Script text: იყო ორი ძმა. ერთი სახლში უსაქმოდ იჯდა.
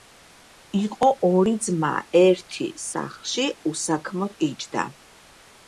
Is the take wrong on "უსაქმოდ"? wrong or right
right